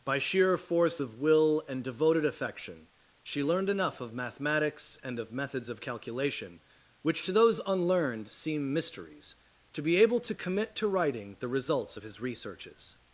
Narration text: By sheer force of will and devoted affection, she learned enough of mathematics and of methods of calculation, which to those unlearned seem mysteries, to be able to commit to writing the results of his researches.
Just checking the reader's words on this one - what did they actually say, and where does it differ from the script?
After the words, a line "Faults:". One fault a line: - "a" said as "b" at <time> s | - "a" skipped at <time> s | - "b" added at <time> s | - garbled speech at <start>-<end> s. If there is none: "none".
By sheer force of will and devoted affection, she learned enough of mathematics and of methods of calculation, which to those unlearned seem mysteries, to be able to commit to writing the results of his researches.
Faults:
none